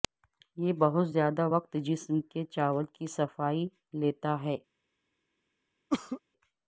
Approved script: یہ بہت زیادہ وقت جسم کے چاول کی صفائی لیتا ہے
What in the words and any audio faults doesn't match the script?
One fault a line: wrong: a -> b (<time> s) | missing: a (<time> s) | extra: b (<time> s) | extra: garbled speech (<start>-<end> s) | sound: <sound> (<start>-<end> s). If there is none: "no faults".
sound: cough (5.9-6.2 s)